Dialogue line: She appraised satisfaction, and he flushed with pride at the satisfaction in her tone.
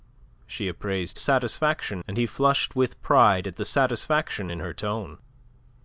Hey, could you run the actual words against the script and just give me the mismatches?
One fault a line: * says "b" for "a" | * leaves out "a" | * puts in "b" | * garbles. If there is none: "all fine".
all fine